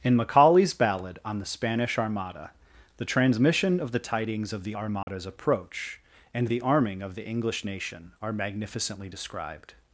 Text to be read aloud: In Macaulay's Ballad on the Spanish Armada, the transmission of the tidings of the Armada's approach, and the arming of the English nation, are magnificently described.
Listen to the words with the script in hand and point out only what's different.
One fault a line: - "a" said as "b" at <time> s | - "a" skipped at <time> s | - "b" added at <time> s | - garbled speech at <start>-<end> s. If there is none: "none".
none